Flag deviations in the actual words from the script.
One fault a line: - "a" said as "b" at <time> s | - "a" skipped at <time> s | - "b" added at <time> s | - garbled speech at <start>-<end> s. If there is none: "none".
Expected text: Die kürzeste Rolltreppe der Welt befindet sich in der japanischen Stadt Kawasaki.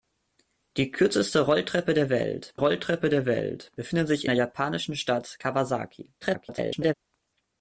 - "Rolltreppe der Welt" added at 2.5 s
- "in" skipped at 4.3 s
- garbled speech at 6.2-6.9 s